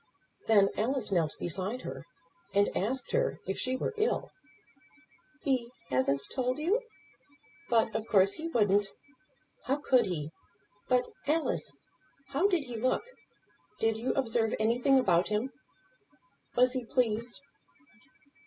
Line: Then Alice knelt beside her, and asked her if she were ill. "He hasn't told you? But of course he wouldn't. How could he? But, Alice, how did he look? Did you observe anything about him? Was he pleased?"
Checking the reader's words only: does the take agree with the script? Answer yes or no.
yes